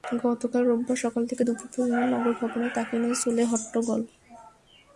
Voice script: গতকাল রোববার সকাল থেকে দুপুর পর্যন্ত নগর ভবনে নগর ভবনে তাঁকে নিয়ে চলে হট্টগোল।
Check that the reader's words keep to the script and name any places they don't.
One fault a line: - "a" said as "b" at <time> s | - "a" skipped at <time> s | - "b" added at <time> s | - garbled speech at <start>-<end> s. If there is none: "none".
- "নগর ভবনে" skipped at 2.7 s